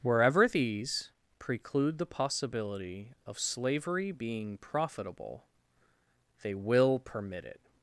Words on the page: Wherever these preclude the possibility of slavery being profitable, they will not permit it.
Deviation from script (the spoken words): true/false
true